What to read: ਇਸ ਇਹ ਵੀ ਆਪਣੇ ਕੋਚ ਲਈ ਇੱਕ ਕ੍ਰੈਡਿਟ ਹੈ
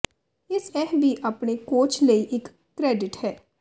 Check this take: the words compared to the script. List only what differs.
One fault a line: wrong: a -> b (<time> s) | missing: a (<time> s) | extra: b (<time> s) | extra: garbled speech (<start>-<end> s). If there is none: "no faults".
no faults